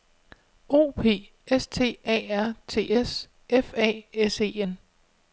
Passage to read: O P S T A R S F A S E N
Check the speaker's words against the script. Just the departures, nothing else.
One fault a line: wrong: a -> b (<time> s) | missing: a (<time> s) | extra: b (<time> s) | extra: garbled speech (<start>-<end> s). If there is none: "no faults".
extra: T (2.7 s)